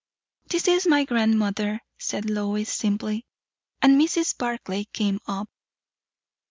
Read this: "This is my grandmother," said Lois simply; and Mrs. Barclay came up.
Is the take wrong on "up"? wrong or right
right